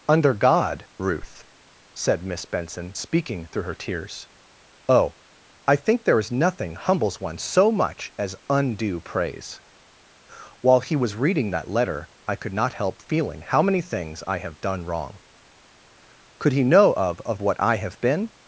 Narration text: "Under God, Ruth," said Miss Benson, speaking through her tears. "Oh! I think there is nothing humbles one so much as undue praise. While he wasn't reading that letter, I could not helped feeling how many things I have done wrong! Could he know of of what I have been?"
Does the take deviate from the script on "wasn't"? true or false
true